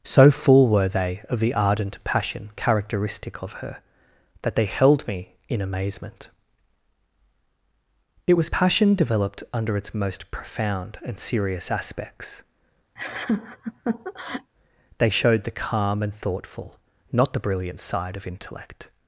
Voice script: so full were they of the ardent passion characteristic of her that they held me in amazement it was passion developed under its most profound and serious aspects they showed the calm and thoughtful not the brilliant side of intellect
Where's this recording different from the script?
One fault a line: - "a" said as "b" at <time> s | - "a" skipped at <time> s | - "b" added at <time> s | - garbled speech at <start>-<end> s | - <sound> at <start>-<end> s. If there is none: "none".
- laugh at 13.0-14.5 s